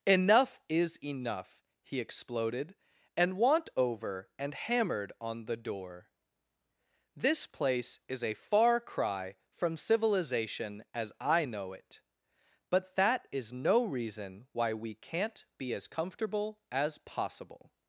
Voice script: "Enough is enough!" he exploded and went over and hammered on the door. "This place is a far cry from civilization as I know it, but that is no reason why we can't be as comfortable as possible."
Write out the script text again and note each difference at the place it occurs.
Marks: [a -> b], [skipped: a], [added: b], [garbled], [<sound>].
"Enough is enough!" he exploded and [went -> want] over and hammered on the door. "This place is a far cry from civilization as I know it, but that is no reason why we can't be as comfortable as possible."